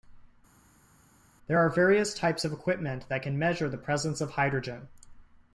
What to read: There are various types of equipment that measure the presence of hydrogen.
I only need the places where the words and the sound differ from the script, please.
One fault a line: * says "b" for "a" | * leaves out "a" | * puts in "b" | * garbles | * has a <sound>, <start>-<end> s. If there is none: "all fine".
* puts in "can"